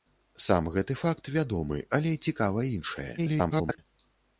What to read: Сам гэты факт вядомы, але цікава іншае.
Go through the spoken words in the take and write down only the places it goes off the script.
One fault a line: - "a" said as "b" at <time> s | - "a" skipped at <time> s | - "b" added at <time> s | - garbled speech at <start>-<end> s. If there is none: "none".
- garbled speech at 3.2-3.8 s